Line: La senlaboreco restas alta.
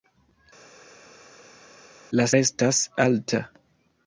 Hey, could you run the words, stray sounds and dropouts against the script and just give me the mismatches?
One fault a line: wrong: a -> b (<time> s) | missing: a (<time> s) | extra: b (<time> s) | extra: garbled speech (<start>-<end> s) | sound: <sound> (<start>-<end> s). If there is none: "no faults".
missing: senlaboreco (2.3 s)